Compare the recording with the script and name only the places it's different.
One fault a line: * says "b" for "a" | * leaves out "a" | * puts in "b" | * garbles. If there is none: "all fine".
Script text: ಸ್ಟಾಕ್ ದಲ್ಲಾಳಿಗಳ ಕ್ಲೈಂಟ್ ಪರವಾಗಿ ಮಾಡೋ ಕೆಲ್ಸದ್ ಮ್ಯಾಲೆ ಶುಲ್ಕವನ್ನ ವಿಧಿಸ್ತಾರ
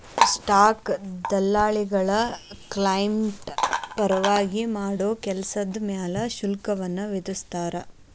all fine